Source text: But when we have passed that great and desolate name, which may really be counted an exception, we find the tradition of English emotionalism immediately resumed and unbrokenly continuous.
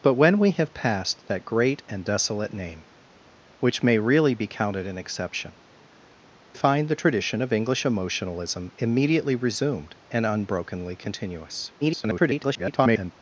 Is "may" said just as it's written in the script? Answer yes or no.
yes